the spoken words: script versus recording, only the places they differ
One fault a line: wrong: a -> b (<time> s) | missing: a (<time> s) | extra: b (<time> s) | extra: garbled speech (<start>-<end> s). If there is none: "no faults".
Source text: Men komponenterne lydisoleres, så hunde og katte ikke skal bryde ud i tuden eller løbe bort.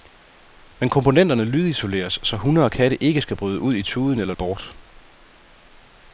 missing: løbe (4.3 s)